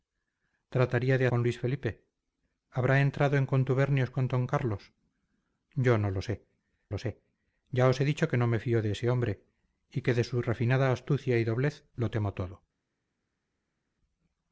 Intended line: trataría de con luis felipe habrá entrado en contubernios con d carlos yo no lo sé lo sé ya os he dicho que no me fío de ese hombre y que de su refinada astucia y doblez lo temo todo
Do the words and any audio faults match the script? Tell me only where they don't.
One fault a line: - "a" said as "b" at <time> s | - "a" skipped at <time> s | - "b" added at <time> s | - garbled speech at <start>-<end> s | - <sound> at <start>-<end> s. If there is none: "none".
none